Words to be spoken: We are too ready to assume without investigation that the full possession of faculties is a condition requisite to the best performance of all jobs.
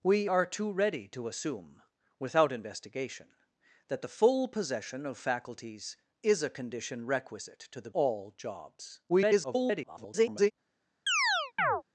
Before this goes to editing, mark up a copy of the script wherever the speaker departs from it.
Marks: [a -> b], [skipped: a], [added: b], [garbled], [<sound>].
We are too ready to assume without investigation that the full possession of faculties is a condition requisite to the [skipped: best performance of] all jobs. [garbled] [chirp]